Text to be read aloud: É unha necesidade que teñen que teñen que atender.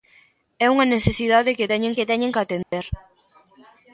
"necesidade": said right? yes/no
yes